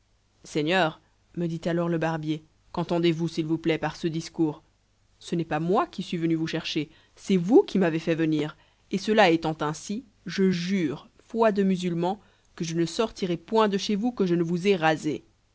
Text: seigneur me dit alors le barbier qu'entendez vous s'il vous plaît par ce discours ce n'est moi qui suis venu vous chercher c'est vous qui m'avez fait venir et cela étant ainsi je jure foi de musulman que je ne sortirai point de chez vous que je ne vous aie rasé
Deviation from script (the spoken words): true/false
true